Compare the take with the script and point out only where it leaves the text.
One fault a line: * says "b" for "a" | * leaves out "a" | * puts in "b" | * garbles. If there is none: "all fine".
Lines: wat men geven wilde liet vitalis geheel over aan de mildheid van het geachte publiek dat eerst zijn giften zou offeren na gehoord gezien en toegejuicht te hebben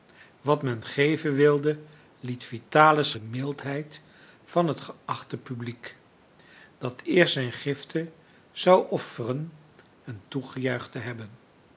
* leaves out "geheel over aan"
* leaves out "na gehoord gezien"